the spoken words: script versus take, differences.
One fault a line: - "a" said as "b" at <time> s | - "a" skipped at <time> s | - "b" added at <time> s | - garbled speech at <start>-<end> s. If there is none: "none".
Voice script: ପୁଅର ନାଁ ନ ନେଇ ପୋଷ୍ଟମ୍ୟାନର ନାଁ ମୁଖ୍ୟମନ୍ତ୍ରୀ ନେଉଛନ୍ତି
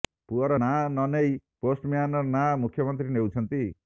none